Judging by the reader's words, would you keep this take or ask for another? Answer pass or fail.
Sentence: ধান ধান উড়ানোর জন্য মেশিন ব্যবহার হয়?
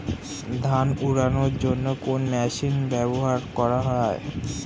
fail